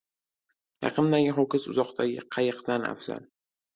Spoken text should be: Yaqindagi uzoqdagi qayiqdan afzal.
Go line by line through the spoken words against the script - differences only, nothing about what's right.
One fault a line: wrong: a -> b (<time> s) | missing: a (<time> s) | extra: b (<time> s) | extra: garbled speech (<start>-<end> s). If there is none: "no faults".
extra: ho‘kiz (1.4 s)